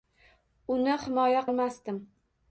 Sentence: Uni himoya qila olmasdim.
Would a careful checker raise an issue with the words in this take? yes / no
yes